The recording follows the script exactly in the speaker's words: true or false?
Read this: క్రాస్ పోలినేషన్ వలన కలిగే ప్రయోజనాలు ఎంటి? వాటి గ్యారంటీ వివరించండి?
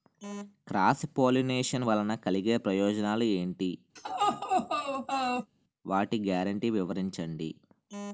true